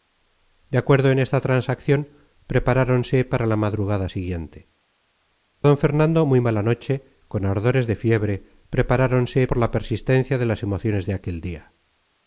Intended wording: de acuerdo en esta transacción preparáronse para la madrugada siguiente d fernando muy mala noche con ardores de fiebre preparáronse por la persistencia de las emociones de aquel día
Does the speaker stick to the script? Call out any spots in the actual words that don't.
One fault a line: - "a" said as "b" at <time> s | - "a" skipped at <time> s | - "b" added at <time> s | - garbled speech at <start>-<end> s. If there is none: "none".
none